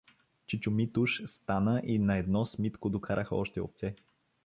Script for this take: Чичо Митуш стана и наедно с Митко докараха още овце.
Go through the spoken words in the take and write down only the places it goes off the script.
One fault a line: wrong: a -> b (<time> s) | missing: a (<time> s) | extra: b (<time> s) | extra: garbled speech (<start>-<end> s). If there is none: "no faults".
no faults